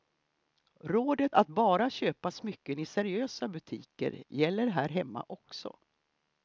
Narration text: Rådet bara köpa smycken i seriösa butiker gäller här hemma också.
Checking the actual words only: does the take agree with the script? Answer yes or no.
no